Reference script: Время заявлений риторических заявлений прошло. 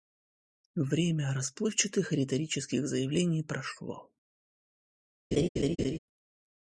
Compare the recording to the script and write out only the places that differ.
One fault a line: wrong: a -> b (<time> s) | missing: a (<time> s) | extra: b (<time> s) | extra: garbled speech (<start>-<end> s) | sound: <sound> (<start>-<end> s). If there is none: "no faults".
wrong: заявлений -> расплывчатых (1.3 s)
sound: laugh (5.3-6.0 s)